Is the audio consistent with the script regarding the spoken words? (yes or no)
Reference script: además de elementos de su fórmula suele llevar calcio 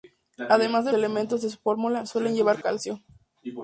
yes